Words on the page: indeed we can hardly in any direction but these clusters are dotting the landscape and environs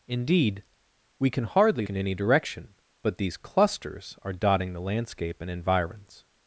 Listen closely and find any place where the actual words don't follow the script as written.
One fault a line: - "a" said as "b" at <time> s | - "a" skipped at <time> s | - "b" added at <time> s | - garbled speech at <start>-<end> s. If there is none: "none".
none